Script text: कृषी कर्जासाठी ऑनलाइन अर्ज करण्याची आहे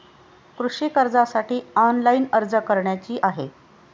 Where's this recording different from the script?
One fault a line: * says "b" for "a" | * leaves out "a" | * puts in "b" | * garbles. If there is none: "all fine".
all fine